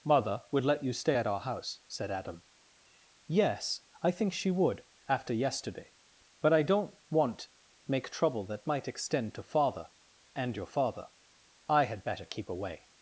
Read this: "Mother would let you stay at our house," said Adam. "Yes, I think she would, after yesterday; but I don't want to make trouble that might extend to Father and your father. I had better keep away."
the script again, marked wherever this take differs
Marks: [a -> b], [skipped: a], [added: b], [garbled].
"Mother would let you stay at our house," said Adam. "Yes, I think she would, after yesterday; but I don't want [skipped: to] make trouble that might extend to Father and your father. I had better keep away."